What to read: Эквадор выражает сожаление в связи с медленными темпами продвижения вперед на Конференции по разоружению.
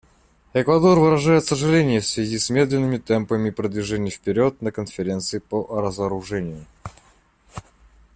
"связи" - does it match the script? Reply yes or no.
yes